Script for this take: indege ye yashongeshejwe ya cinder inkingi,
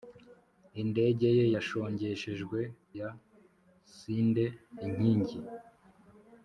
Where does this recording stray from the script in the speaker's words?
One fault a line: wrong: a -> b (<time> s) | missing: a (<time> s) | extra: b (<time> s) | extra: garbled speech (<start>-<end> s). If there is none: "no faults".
no faults